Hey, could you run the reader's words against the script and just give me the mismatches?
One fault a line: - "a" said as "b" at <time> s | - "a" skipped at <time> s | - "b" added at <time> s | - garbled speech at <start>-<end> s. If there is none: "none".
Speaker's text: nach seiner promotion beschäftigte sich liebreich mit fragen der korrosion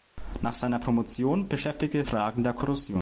- "sich liebreich mit" skipped at 2.0 s